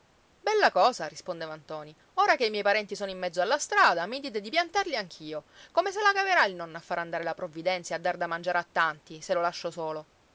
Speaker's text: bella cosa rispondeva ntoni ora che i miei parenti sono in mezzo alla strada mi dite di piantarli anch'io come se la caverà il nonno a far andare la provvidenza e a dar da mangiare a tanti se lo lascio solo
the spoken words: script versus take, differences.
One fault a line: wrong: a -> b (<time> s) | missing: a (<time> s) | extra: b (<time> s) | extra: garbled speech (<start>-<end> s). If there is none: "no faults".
no faults